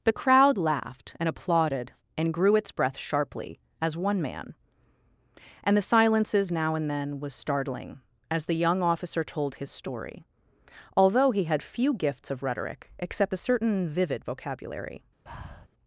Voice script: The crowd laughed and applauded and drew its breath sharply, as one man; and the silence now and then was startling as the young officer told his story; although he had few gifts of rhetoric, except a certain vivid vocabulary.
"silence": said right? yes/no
no